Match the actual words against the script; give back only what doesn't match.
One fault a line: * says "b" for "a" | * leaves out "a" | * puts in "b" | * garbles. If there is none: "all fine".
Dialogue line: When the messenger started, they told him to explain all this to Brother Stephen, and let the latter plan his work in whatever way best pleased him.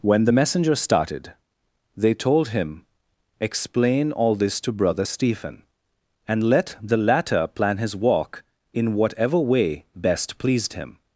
* leaves out "to"
* says "walk" for "work"